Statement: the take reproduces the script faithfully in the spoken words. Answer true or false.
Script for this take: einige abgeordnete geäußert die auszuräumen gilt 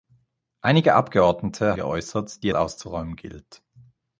true